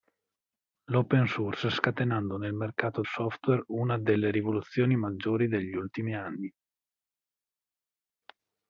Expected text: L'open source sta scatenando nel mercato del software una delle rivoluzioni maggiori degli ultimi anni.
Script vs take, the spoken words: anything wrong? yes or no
yes